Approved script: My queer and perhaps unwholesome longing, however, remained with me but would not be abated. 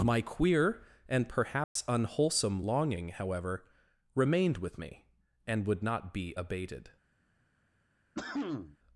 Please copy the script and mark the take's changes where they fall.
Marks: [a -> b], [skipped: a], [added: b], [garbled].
My queer and perhaps unwholesome longing, however, remained with me [but -> and] would not be abated.